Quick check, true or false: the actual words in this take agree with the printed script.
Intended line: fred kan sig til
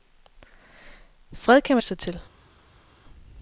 true